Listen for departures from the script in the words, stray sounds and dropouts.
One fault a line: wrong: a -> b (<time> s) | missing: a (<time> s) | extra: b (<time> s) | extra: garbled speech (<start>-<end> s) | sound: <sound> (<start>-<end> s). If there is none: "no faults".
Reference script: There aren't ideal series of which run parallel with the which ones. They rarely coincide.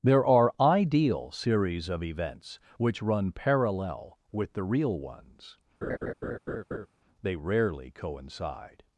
wrong: aren't -> are (0.2 s)
extra: events (2.0 s)
wrong: which -> real (4.6 s)
sound: laugh (5.8-6.9 s)